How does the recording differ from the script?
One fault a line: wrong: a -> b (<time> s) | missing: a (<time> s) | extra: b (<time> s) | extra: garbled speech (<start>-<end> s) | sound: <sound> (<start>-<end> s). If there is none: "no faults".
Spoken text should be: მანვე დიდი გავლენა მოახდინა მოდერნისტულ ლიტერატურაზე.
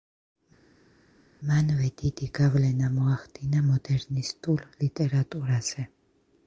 no faults